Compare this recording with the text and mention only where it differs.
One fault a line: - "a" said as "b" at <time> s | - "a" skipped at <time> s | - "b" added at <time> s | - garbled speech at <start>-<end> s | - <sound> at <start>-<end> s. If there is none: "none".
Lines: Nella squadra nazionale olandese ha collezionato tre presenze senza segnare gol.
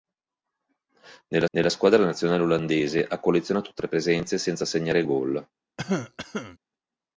- "nella" added at 1.5 s
- cough at 5.8-6.6 s